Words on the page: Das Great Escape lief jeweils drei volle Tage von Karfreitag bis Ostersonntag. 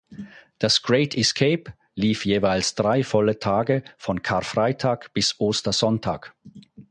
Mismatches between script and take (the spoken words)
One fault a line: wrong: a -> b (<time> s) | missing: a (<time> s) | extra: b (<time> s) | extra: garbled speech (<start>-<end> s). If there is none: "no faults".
no faults